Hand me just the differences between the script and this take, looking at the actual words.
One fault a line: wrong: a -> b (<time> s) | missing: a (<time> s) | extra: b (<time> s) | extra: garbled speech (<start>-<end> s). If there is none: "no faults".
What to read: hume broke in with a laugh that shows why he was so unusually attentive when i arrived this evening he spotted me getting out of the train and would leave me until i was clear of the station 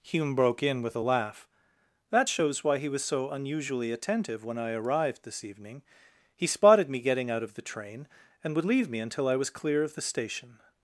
no faults